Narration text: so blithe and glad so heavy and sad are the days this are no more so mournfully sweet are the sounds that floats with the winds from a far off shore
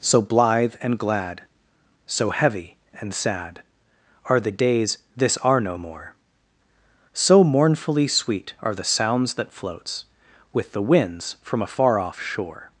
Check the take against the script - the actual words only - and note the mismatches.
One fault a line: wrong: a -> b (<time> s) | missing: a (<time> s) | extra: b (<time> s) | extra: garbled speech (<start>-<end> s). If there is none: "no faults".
no faults